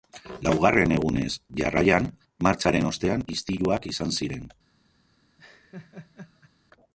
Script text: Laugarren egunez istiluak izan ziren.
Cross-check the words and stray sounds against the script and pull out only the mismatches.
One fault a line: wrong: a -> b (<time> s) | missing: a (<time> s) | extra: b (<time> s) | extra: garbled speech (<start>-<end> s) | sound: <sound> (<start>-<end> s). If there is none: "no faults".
extra: jarraian martxaren ostean (1.6 s)
sound: laugh (5.4-6.5 s)